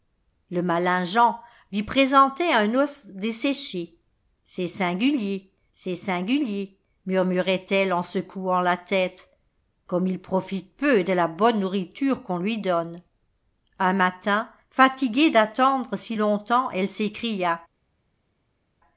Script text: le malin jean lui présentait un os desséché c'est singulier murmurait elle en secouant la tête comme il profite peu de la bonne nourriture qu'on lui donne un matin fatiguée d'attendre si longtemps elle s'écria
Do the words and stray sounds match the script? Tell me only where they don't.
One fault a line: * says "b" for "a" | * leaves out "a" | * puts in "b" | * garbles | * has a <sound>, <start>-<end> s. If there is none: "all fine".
* puts in "c'est singulier"